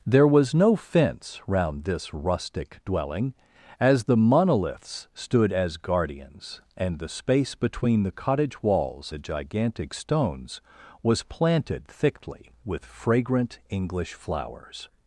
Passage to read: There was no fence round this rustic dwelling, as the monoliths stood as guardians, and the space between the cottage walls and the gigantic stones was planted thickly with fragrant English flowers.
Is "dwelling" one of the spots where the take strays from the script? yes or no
no